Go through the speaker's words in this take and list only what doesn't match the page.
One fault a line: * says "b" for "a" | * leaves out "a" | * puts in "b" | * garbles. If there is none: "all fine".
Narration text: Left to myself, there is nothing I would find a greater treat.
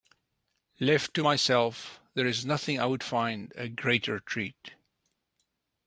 all fine